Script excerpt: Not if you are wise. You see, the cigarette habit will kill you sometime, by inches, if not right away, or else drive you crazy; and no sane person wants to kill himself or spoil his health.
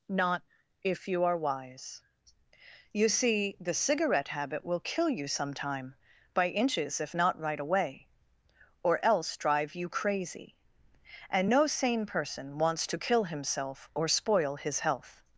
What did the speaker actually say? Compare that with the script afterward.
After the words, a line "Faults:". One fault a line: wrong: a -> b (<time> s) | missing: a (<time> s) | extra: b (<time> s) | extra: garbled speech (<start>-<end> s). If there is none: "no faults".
Not if you are wise. You see, the cigarette habit will kill you sometime, by inches, if not right away, or else drive you crazy; and no sane person wants to kill himself or spoil his health.
Faults:
no faults